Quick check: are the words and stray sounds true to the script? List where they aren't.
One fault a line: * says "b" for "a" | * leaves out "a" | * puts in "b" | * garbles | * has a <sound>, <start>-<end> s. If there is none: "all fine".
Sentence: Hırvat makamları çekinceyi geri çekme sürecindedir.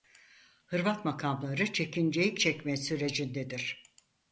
* leaves out "geri"